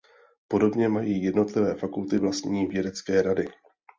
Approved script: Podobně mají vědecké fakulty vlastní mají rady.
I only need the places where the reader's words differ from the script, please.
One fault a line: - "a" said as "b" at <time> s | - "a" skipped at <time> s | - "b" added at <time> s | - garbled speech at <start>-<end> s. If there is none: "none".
- "vědecké" said as "jednotlivé" at 1.2 s
- "mají" said as "vědecké" at 2.7 s